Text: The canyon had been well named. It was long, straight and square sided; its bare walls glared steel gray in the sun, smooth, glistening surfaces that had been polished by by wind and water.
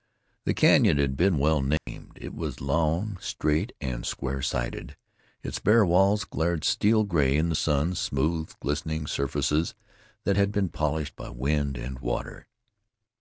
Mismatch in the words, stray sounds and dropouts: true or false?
true